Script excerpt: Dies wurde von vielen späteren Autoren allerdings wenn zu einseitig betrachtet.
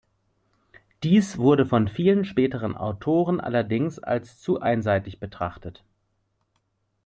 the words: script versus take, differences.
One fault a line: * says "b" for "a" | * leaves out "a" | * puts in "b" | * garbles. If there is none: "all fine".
* says "als" for "wenn"